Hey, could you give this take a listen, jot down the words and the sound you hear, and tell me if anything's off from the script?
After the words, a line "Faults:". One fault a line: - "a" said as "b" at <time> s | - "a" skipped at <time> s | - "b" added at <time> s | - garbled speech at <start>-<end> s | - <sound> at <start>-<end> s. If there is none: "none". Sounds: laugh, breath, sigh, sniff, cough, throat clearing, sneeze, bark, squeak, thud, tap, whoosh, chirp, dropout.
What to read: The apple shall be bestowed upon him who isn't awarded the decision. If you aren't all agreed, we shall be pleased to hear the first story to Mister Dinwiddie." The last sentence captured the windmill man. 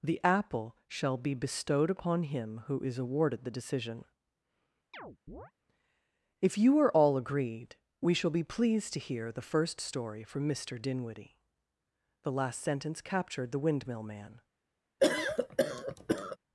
The apple shall be bestowed upon him who is awarded the decision. If you are all agreed, we shall be pleased to hear the first story from Mister Dinwiddie." The last sentence captured the windmill man.
Faults:
- "isn't" said as "is" at 2.8 s
- chirp at 4.9-5.5 s
- "aren't" said as "are" at 6.8 s
- "to" said as "from" at 10.2 s
- cough at 15.0-16.4 s